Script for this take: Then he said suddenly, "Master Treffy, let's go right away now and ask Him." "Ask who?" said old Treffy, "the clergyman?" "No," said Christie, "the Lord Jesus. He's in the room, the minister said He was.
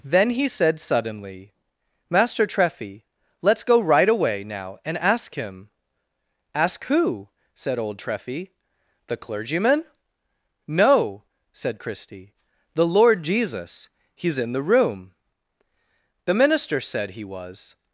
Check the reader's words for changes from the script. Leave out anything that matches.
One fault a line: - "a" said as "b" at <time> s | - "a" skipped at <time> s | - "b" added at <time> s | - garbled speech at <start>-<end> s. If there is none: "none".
none